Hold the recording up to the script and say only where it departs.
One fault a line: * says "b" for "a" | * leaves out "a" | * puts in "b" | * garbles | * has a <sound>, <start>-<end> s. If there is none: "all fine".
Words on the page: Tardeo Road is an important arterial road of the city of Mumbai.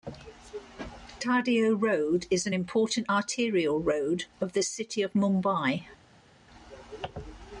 all fine